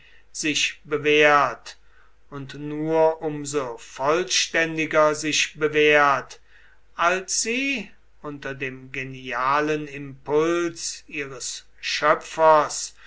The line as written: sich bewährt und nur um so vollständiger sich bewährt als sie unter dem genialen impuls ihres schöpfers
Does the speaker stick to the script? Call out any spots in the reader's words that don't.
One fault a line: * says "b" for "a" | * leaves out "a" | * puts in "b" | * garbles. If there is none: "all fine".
all fine